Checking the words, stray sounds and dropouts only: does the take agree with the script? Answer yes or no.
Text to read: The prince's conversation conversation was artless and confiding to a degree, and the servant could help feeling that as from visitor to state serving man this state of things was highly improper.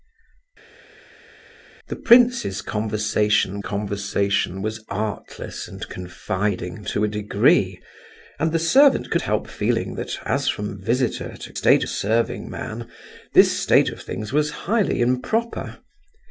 yes